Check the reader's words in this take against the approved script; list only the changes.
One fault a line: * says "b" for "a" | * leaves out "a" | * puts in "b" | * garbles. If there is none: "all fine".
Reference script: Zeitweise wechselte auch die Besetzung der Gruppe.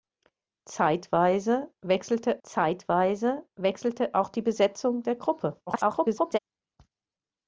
* puts in "zeitweise wechselte"
* garbles